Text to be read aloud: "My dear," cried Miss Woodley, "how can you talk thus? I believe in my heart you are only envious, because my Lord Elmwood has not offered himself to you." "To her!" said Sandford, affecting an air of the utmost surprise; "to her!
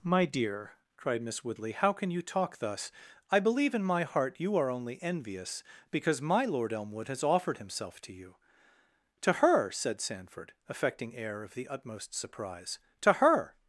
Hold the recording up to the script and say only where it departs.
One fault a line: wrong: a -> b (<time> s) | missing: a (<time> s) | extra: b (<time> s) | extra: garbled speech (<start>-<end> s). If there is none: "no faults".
missing: not (7.2 s)
missing: an (11.1 s)